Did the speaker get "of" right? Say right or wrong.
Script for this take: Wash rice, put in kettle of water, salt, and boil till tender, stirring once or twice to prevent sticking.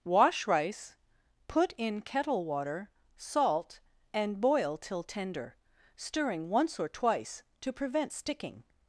wrong